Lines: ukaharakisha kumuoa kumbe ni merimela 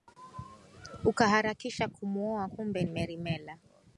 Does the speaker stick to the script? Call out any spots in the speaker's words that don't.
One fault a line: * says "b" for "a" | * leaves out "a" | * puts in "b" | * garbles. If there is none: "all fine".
* leaves out "ni"